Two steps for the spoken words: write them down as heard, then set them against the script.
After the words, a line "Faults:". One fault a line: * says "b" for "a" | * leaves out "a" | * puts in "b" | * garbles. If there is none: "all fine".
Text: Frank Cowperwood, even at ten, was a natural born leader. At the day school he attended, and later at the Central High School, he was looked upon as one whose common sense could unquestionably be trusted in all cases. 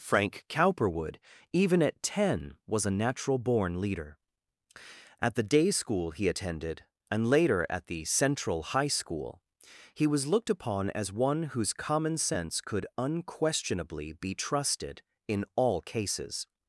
Frank Cowperwood, even at ten, was a natural born leader. At the day school he attended, and later at the Central High School, he was looked upon as one whose common sense could unquestionably be trusted in all cases.
Faults:
all fine